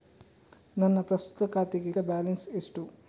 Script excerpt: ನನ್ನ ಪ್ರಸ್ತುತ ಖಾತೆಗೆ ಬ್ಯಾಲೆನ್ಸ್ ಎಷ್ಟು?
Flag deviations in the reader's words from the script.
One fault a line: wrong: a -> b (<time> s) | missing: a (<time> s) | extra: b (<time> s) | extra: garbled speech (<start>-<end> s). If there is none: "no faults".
no faults